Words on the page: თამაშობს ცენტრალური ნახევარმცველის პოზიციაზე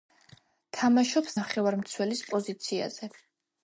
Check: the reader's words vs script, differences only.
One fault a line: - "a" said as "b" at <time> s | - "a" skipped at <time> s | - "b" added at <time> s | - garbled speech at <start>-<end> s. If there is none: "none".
- "ცენტრალური" skipped at 1.4 s